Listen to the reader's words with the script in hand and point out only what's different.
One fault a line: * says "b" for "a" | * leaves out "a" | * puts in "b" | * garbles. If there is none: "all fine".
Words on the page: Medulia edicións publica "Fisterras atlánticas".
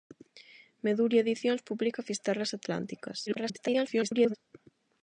* garbles